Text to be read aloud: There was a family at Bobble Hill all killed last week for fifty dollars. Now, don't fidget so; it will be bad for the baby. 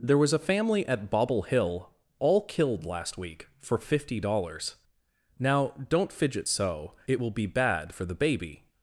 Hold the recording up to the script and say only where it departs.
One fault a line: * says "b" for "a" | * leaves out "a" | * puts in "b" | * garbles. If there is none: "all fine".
all fine